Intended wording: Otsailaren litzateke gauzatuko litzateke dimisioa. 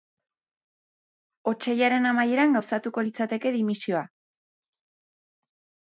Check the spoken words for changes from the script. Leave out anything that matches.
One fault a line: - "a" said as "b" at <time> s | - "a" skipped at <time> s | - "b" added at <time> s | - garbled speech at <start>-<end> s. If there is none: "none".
- "litzateke" said as "amaieran" at 2.1 s